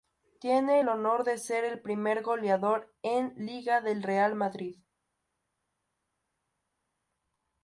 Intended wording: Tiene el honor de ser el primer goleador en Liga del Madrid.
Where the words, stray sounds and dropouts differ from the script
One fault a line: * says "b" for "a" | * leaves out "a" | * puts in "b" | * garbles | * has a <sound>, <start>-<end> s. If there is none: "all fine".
* puts in "Real"